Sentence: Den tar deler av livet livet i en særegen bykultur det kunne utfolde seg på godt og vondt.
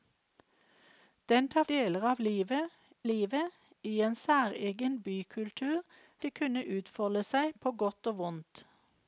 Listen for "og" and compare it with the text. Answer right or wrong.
right